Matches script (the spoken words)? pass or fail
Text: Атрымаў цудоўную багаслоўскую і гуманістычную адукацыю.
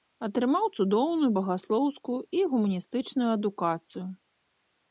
pass